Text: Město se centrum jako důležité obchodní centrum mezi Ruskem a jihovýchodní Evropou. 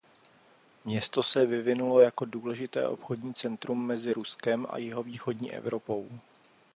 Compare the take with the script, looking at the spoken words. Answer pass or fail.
fail